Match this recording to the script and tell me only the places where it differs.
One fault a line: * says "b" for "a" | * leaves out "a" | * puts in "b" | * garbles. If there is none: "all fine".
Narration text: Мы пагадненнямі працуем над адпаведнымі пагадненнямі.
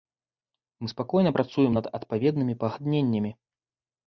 * says "спакойна" for "пагадненнямі"